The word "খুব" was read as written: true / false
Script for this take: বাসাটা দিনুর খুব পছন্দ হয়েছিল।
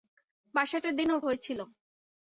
false